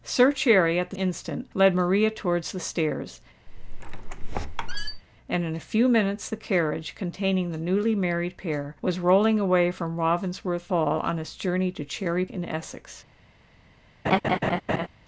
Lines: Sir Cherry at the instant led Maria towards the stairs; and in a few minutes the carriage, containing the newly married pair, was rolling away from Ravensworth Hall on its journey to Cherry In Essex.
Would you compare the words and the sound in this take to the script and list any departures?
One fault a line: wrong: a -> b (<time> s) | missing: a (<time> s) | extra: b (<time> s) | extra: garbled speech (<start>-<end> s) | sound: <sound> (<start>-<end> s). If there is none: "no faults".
sound: squeak (3.5-5.0 s)
sound: laugh (14.0-14.9 s)